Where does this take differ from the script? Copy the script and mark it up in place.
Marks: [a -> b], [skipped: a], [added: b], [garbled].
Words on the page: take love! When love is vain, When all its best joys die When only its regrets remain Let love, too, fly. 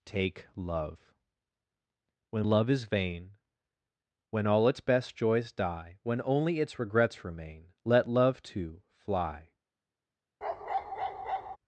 take love! When love is vain, When all its best joys die When only its regrets remain Let love, too, fly.